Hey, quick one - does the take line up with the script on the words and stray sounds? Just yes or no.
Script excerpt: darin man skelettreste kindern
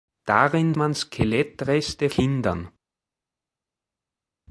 yes